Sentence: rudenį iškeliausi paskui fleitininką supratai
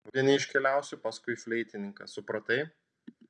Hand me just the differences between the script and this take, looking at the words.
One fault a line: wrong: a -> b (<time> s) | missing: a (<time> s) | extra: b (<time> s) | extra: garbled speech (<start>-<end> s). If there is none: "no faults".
no faults